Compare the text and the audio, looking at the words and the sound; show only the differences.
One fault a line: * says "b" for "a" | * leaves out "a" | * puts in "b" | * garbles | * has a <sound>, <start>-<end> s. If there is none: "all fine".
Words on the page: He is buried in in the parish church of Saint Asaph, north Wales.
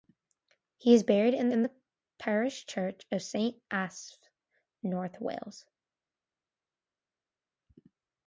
all fine